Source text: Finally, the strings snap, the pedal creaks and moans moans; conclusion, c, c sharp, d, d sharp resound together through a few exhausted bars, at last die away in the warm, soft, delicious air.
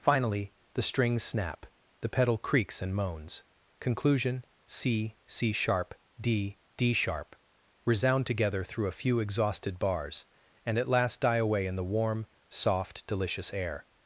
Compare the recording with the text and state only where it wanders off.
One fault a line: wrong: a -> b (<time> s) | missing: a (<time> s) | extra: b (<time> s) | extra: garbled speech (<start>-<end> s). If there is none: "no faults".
missing: moans (3.4 s)
extra: and (10.7 s)